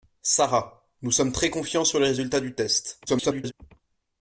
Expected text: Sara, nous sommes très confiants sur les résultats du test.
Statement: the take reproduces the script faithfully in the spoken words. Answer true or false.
false